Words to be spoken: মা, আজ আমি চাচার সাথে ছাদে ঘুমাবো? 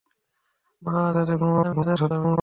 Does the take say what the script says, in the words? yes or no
no